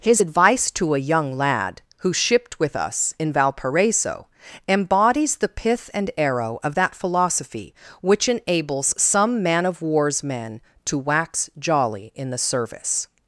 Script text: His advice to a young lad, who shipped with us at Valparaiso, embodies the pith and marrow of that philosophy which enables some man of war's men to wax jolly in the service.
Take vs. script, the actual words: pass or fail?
fail